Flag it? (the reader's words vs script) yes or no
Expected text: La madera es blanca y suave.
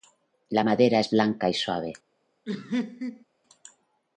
no